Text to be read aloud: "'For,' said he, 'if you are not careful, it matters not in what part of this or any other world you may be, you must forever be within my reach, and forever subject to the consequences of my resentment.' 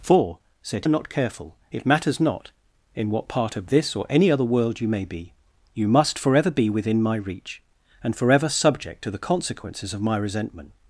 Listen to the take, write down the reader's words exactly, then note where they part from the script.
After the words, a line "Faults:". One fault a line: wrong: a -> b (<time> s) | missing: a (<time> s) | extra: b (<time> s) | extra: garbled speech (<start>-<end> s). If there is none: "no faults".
"'For,' said are not careful, it matters not in what part of this or any other world you may be, you must forever be within my reach, and forever subject to the consequences of my resentment.'
Faults:
missing: he if you (0.9 s)